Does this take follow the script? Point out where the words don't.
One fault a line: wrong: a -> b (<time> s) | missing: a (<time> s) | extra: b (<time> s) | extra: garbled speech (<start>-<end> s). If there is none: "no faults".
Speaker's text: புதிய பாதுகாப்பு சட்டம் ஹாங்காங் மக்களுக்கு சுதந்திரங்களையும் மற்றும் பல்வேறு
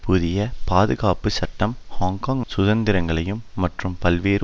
missing: மக்களுக்கு (2.4 s)